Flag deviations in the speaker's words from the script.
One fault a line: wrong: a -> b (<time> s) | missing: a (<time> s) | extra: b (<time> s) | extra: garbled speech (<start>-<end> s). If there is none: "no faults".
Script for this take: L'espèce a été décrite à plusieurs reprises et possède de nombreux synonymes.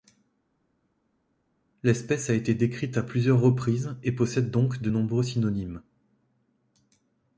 extra: donc (4.5 s)